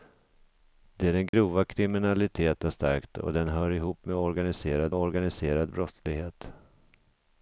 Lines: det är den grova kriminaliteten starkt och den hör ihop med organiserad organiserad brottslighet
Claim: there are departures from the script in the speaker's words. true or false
false